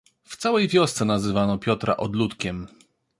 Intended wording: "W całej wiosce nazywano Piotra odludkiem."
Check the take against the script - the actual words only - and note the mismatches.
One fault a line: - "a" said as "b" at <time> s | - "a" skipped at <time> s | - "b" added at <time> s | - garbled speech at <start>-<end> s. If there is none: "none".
none